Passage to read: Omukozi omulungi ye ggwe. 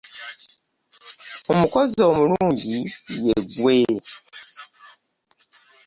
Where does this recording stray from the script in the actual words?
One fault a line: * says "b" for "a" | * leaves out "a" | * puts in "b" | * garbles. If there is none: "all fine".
all fine